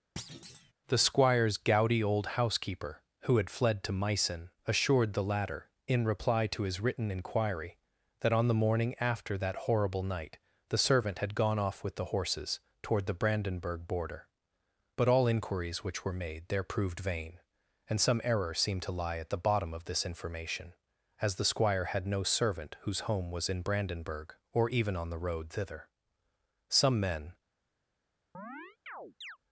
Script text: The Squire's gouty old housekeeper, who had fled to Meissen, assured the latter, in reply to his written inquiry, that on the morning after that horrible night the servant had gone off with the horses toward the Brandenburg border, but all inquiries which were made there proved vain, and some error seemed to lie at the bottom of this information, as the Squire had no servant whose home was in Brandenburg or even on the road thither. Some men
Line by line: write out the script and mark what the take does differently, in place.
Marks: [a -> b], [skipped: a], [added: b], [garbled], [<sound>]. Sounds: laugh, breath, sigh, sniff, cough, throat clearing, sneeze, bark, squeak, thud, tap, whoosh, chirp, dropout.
[thud] The Squire's gouty old housekeeper, who had fled to Meissen, assured the latter, in reply to his written inquiry, that on the morning after that horrible night the servant had gone off with the horses toward the Brandenburg border, but all inquiries which were made there proved vain, and some error seemed to lie at the bottom of this information, as the Squire had no servant whose home was in Brandenburg or even on the road thither. Some men [chirp]